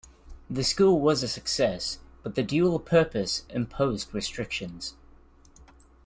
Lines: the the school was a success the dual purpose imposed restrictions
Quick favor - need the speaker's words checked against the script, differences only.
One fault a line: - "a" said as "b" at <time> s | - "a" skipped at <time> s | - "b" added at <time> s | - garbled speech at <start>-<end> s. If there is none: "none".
- "the" skipped at 0.6 s
- "but" added at 2.2 s